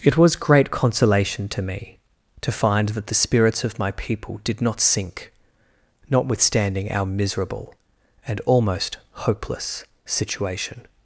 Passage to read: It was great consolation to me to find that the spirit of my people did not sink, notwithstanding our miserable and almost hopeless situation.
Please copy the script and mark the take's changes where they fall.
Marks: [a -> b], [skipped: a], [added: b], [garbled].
It was great consolation to me to find that the [spirit -> spirits] of my people did not sink, notwithstanding our miserable and almost hopeless situation.